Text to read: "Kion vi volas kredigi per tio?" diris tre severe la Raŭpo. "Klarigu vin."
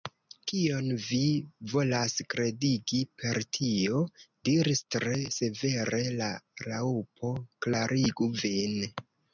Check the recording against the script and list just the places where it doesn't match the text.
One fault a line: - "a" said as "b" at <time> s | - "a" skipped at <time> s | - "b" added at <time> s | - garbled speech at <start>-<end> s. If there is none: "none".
none